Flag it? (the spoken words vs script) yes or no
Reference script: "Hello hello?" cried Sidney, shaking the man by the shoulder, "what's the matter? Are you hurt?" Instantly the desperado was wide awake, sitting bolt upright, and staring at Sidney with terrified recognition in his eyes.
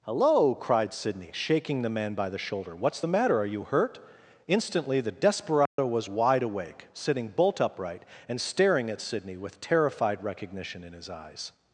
yes